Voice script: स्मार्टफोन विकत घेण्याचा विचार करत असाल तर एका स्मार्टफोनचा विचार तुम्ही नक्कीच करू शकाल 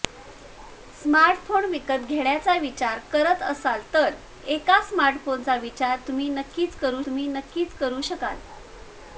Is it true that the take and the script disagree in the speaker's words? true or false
true